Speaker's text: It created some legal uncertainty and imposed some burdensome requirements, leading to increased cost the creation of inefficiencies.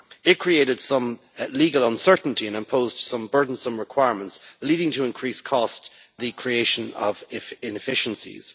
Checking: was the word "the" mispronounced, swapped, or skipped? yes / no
no